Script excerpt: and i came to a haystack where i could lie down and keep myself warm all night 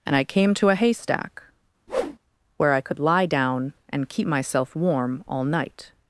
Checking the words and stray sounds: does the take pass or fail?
fail